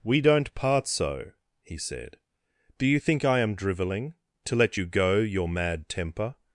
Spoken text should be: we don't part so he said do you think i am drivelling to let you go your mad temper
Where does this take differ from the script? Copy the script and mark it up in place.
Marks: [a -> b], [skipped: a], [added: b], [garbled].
we don't part so he said do you think i am drivelling to let you go your mad temper